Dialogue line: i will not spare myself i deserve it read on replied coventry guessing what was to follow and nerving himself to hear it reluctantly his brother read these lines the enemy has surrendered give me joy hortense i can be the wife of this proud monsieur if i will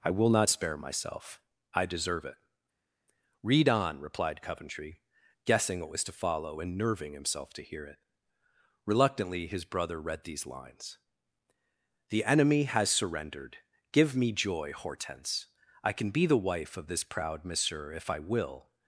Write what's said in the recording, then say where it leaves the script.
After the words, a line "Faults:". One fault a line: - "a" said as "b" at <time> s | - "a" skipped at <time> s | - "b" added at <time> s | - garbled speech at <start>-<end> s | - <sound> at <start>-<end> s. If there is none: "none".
i will not spare myself i deserve it read on replied coventry guessing what was to follow and nerving himself to hear it reluctantly his brother read these lines the enemy has surrendered give me joy hortense i can be the wife of this proud monsieur if i will
Faults:
none